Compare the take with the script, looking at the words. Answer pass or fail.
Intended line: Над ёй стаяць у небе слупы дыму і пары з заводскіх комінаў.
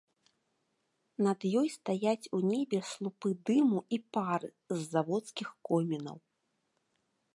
pass